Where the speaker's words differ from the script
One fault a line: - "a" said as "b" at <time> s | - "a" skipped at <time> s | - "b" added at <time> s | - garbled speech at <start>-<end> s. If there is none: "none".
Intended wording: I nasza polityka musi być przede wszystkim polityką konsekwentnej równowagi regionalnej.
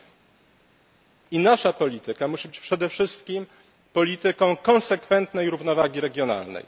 none